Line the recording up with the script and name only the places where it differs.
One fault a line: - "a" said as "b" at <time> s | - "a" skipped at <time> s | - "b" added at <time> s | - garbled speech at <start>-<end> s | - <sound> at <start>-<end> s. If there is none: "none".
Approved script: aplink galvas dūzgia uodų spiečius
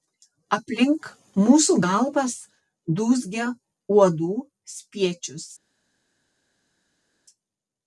- "mūsų" added at 1.4 s